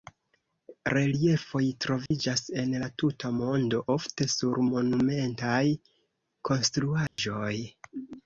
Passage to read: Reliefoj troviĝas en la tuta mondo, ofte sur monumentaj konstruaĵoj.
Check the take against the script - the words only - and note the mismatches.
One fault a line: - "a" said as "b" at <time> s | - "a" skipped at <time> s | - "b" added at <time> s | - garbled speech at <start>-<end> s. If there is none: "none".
none